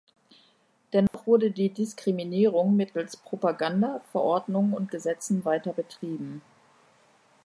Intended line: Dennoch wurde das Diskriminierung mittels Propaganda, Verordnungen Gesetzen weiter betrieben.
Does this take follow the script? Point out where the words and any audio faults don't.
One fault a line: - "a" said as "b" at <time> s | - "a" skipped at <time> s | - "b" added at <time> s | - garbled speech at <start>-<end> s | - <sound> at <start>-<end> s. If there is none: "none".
- dropout at 1.1-1.1 s
- "das" said as "die" at 1.5 s
- "und" added at 4.7 s